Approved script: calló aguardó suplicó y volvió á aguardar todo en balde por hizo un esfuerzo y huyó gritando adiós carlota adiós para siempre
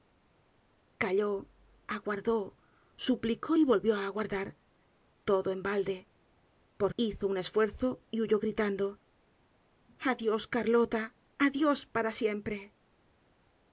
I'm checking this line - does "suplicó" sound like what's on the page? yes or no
yes